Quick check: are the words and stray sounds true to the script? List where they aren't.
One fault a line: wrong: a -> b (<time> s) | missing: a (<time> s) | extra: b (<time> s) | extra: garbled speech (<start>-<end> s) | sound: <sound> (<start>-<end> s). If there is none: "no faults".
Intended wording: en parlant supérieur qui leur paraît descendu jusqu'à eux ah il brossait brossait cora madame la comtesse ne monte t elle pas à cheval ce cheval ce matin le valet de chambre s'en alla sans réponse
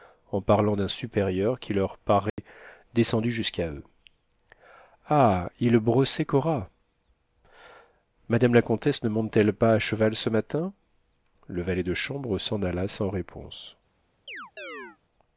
extra: d'un (0.8 s)
sound: dropout (2.3-2.4 s)
missing: brossait (6.2 s)
missing: cheval ce (10.3 s)
sound: chirp (14.3-15.0 s)